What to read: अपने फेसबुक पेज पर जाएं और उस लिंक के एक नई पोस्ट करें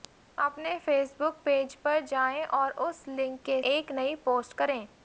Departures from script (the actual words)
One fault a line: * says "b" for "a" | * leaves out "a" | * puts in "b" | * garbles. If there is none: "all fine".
all fine